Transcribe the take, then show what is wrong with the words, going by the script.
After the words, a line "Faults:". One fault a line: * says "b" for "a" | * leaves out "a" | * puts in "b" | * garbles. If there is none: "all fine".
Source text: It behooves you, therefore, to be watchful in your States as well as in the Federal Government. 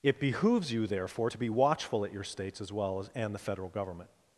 It behooves you, therefore, to be watchful at your States as well as and the Federal Government.
Faults:
* says "at" for "in"
* says "and" for "in"